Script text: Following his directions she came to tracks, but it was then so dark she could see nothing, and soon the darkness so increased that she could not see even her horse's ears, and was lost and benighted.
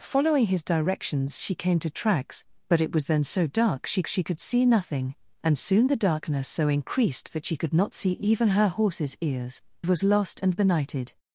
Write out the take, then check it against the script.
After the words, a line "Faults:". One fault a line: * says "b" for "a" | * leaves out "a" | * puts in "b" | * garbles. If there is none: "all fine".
Following his directions she came to tracks, but it was then so dark she she could see nothing, and soon the darkness so increased that she could not see even her horse's ears, was lost and benighted.
Faults:
* puts in "she"
* leaves out "and"